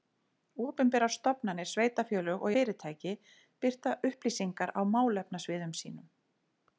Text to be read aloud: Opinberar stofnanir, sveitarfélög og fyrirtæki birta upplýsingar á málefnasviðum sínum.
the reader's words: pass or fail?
pass